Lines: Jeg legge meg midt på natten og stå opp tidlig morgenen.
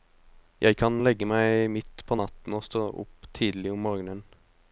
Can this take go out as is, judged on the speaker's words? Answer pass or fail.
fail